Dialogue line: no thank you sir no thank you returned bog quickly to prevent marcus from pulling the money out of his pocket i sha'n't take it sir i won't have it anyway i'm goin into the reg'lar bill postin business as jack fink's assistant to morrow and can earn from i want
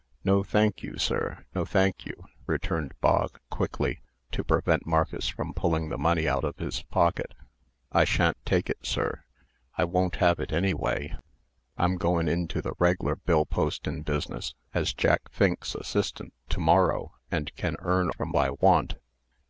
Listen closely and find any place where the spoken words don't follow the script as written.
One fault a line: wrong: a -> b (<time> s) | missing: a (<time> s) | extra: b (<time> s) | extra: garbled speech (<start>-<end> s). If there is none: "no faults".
no faults